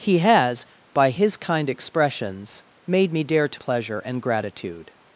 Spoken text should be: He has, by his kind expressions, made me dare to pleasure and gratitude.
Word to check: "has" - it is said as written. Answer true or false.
true